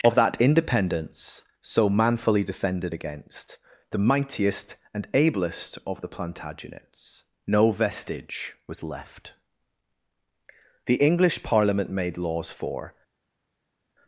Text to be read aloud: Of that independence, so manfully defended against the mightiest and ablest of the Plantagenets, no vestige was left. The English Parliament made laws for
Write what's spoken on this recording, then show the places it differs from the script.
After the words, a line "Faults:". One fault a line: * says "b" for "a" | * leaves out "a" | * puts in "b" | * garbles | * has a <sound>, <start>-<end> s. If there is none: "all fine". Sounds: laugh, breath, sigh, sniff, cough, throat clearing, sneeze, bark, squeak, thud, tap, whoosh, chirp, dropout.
Of that independence, so manfully defended against the mightiest and ablest of the Plantagenets, no vestige was left. The English Parliament made laws for
Faults:
all fine